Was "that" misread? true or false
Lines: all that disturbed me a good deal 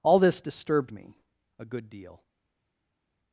true